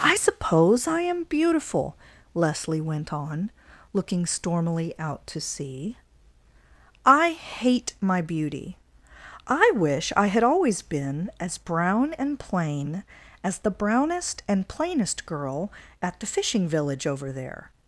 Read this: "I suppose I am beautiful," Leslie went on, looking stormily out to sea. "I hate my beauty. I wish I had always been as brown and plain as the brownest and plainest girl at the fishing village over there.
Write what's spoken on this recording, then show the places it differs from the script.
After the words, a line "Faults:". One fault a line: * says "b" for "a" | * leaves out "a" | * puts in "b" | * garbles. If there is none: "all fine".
"I suppose I am beautiful," Leslie went on, looking stormily out to sea. "I hate my beauty. I wish I had always been as brown and plain as the brownest and plainest girl at the fishing village over there.
Faults:
all fine